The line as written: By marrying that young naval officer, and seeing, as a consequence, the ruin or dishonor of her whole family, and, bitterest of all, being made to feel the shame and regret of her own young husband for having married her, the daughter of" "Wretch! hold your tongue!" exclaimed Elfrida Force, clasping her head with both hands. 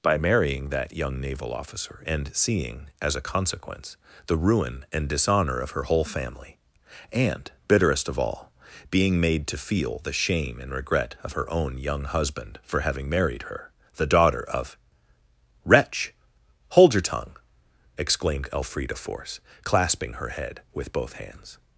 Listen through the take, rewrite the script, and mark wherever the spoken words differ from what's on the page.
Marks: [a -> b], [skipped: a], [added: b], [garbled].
By marrying that young naval officer, and seeing, as a consequence, the ruin [or -> and] dishonor of her whole family, and, bitterest of all, being made to feel the shame and regret of her own young husband for having married her, the daughter of" "Wretch! hold your tongue!" exclaimed Elfrida Force, clasping her head with both hands.